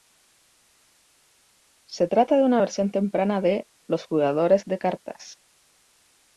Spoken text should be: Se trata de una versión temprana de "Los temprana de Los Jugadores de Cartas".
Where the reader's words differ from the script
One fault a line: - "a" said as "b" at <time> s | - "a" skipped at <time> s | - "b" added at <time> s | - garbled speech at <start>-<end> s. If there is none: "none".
- "temprana de Los" skipped at 4.0 s